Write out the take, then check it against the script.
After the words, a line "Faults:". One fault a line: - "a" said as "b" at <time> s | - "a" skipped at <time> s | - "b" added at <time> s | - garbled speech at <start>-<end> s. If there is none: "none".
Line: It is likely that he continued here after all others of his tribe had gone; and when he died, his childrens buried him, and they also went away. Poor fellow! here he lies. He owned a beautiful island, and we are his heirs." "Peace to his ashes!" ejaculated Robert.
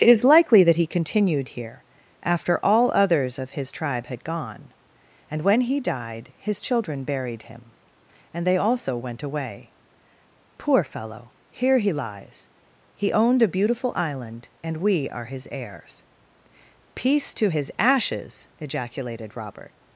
It is likely that he continued here after all others of his tribe had gone; and when he died, his children buried him, and they also went away. Poor fellow! here he lies. He owned a beautiful island, and we are his heirs." "Peace to his ashes!" ejaculated Robert.
Faults:
- "childrens" said as "children" at 6.6 s